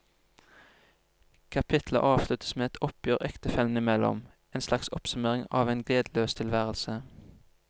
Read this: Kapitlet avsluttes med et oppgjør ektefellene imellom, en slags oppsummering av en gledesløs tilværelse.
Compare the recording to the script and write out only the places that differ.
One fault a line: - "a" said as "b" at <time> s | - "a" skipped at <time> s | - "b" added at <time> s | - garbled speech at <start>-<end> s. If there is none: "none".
none